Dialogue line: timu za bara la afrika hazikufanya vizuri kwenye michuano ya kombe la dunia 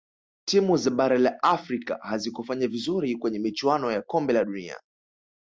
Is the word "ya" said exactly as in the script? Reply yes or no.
yes